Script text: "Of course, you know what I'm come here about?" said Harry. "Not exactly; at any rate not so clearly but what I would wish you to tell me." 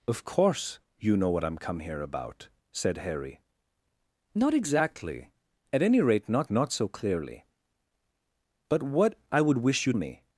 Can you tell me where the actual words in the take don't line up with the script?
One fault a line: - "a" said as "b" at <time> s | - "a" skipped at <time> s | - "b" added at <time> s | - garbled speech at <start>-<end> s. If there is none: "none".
- "not" added at 6.5 s
- "to tell" skipped at 9.9 s